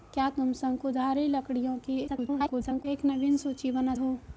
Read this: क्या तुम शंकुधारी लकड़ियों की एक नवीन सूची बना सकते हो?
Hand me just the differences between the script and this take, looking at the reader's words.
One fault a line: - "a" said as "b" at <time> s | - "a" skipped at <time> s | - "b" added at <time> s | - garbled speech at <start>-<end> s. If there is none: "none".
- garbled speech at 2.1-2.9 s
- "सकते" skipped at 4.0 s